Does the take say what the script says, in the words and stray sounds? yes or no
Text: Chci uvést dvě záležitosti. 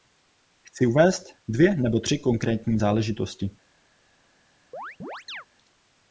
no